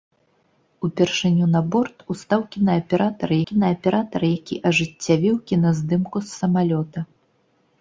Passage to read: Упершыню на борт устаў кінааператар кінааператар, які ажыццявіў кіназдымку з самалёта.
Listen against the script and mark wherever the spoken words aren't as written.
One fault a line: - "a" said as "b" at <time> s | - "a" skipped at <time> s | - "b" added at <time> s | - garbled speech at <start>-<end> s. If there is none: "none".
none